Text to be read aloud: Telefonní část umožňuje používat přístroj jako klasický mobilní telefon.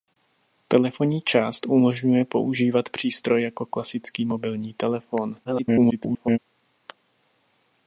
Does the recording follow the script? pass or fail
fail